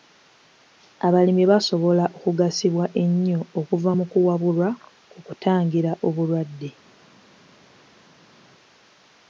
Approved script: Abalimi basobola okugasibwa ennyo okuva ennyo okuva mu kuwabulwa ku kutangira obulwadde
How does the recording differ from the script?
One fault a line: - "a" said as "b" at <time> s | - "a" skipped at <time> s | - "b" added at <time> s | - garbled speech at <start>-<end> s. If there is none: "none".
- "ennyo okuva" skipped at 3.9 s